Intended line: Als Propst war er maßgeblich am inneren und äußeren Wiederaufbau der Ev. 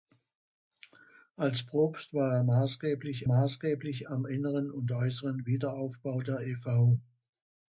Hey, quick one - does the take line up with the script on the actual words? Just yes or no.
no